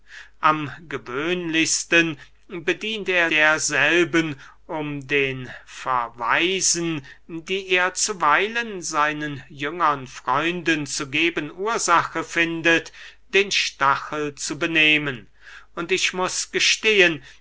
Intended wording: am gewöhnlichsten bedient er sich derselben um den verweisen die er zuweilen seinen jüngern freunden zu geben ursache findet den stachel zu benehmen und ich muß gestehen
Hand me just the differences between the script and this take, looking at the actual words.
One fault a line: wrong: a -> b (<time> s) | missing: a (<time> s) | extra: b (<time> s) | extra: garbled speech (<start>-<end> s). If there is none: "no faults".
missing: sich (3.3 s)